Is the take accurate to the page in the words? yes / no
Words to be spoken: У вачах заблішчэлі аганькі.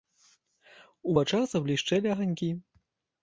yes